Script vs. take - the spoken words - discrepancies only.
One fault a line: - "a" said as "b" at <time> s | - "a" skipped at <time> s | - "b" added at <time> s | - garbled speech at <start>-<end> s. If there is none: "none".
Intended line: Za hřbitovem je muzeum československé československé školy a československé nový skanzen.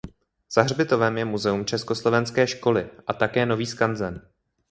- "československé" skipped at 2.5 s
- "československé" said as "také" at 3.1 s